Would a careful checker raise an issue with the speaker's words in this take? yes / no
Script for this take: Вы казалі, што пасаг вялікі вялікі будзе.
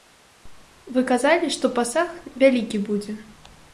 yes